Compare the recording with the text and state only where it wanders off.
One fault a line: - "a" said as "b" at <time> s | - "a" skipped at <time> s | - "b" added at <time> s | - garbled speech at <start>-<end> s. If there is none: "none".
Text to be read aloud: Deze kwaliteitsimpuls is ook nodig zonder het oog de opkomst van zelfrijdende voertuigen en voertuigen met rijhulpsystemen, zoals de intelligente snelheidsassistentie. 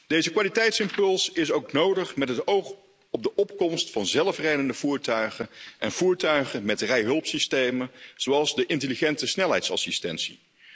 - "zonder" said as "met" at 2.1 s
- "op" added at 3.1 s